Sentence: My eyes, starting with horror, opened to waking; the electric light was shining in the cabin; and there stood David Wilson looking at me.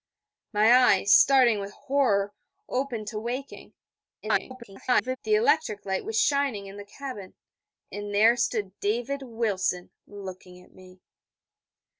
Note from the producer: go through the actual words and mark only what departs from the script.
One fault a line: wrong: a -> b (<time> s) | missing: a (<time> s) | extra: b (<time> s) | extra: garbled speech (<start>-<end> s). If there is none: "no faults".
extra: garbled speech (4.2-5.2 s)